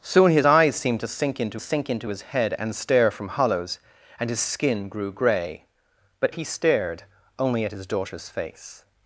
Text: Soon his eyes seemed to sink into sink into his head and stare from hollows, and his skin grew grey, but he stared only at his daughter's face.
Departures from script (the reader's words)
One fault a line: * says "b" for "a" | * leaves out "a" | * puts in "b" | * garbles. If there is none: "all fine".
all fine